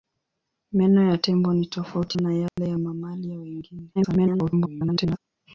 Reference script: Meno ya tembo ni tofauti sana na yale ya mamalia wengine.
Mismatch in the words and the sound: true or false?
true